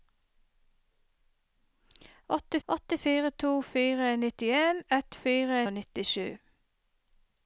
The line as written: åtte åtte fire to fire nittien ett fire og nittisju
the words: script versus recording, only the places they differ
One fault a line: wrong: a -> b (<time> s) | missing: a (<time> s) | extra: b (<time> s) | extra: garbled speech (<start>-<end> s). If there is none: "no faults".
no faults